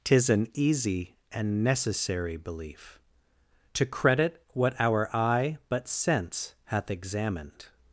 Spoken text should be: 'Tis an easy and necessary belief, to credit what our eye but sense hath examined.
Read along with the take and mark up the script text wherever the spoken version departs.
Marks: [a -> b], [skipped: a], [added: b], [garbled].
'Tis an easy and necessary belief, to credit what our eye but sense hath examined.